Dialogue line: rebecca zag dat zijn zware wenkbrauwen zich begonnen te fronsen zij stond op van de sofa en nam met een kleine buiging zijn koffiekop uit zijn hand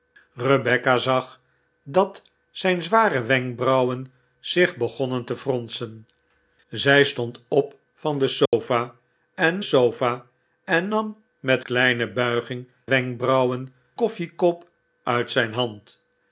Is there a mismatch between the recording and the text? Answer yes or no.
yes